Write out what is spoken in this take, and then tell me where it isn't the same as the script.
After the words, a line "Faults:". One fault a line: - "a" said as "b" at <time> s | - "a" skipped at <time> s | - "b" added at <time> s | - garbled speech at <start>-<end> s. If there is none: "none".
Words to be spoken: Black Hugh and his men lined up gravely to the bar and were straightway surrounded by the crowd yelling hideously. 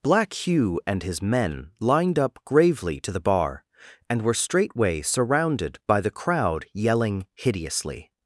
Black Hugh and his men lined up gravely to the bar and were straightway surrounded by the crowd yelling hideously.
Faults:
none